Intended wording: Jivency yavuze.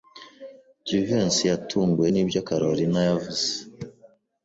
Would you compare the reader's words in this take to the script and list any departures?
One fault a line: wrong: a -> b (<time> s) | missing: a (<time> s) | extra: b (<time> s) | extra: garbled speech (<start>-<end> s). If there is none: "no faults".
extra: yatunguwe nibyo Kalorina (1.5 s)